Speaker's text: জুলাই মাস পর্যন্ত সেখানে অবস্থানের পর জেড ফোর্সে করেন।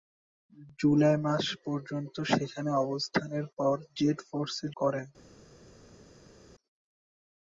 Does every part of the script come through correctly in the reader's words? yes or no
yes